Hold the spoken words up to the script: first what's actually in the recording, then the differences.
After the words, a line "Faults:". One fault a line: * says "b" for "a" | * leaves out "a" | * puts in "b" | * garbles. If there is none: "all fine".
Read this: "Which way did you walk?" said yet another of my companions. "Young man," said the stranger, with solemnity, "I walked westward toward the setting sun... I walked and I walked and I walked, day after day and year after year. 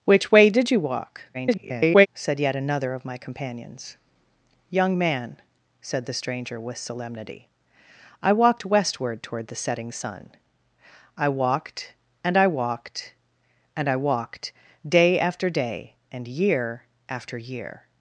"Which way did you walk?" [garbled] said yet another of my companions. "Young man," said the stranger, with solemnity, "I walked westward toward the setting sun... I walked and I walked and I walked, day after day and year after year.
Faults:
* garbles